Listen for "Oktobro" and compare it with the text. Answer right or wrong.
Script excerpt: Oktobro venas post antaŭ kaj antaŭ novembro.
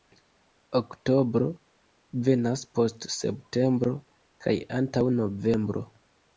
right